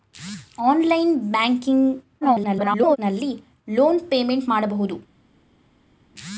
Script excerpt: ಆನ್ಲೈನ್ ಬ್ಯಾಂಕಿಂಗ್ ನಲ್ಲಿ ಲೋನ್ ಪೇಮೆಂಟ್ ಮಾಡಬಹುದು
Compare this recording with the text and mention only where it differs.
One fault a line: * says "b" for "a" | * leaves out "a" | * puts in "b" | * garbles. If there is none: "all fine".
* garbles